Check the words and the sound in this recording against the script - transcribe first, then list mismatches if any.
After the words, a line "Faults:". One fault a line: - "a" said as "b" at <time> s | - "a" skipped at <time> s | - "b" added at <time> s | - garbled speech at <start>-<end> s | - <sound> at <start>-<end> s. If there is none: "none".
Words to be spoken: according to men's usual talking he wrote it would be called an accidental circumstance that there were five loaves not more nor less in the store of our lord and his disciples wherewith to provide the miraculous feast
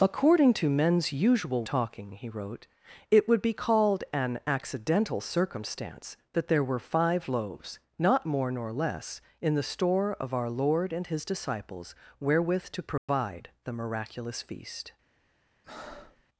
according to men's usual talking he wrote it would be called an accidental circumstance that there were five loaves not more nor less in the store of our lord and his disciples wherewith to provide the miraculous feast
Faults:
- dropout at 13.0-13.1 s
- breath at 15.6-16.2 s